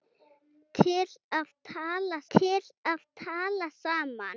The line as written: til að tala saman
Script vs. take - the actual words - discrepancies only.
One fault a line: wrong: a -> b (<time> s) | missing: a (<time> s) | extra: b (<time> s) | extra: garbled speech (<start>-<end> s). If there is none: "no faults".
extra: til að tala (2.3 s)